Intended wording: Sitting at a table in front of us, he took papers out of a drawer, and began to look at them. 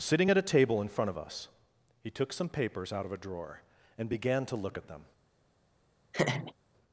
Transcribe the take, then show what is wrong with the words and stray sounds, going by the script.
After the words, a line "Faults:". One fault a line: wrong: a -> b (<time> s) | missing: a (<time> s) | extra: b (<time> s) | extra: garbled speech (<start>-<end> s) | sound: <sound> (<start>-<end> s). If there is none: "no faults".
Sitting at a table in front of us, he took some papers out of a drawer, and began to look at them.
Faults:
extra: some (2.3 s)
sound: laugh (6.1-6.5 s)